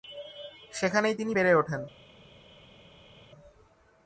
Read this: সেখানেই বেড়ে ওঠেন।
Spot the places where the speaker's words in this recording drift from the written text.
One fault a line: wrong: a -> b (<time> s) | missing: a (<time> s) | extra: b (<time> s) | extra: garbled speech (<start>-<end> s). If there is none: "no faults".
extra: তিনি (1.1 s)